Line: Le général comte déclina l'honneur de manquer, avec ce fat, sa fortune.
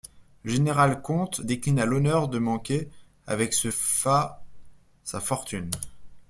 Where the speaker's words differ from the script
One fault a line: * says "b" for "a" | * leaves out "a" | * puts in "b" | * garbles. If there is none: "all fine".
all fine